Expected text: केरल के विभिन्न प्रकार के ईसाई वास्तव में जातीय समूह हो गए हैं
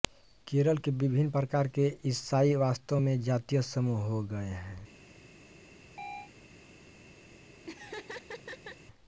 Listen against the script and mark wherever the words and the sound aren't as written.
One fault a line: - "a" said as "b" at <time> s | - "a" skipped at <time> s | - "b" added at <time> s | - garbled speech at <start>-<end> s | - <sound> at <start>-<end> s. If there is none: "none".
- chirp at 6.0-6.3 s
- laugh at 7.6-8.8 s